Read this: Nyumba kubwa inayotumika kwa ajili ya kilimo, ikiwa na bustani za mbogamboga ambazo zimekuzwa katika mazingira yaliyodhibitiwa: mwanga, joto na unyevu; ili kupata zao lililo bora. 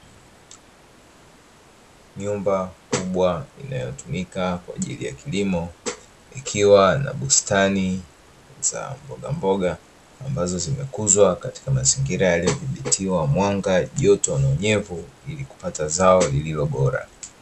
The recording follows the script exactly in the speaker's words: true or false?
true